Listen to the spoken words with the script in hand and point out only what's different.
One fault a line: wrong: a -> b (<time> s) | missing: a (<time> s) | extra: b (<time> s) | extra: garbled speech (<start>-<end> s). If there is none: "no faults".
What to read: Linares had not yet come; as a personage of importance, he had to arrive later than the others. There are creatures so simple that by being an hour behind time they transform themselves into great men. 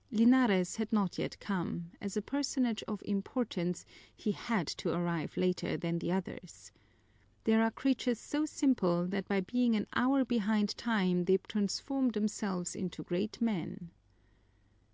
no faults